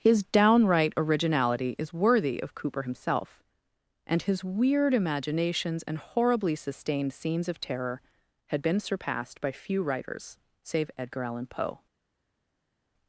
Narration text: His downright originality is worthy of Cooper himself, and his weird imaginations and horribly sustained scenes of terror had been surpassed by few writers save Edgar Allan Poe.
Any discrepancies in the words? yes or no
no